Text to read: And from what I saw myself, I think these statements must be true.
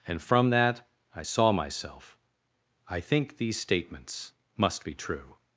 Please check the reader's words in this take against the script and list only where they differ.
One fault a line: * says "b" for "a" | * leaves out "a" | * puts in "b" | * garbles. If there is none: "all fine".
* says "that" for "what"